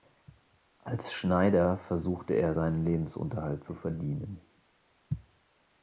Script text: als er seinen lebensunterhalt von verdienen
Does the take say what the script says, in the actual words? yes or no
no